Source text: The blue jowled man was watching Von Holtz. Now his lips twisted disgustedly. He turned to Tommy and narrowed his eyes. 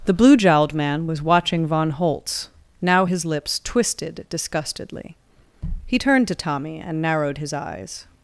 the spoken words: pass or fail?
pass